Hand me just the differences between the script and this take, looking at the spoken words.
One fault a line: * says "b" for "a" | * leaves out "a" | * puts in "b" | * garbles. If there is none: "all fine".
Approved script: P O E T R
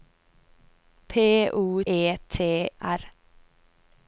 all fine